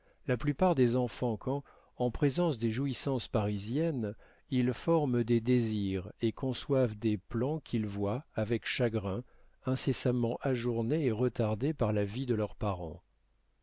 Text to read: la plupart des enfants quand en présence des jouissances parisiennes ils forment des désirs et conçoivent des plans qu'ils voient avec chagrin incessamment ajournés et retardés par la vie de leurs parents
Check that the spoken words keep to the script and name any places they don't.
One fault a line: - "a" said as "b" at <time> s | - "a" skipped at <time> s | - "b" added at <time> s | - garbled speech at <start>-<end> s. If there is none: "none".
none